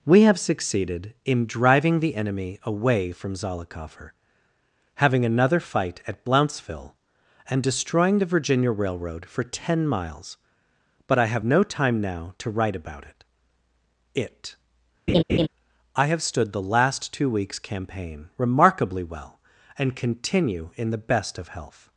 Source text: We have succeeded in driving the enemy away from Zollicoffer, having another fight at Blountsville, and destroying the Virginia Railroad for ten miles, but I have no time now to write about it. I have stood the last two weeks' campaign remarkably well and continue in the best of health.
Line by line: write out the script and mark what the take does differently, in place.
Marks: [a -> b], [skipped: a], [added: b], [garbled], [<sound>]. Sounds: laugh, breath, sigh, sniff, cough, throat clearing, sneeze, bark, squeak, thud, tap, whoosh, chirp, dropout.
We have succeeded in driving the enemy away from Zollicoffer, having another fight at Blountsville, and destroying the Virginia Railroad for ten miles, but I have no time now to write about it. [added: it] [laugh] I have stood the last two weeks' campaign remarkably well and continue in the best of health.